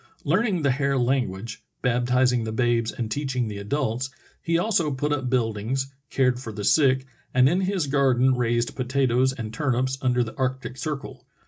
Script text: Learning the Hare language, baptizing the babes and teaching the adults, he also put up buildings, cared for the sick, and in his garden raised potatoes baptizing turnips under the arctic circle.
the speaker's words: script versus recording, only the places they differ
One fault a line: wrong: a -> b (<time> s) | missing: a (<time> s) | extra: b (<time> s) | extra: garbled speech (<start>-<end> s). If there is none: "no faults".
wrong: baptizing -> and (9.3 s)